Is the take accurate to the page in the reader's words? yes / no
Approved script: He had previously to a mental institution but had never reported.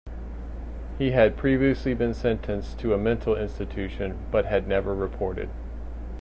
no